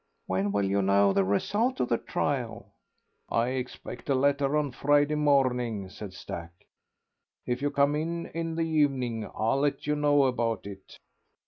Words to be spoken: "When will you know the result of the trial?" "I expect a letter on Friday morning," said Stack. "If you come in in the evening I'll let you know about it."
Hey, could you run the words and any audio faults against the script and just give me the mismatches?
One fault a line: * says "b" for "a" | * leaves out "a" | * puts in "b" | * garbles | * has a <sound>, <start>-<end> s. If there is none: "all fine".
all fine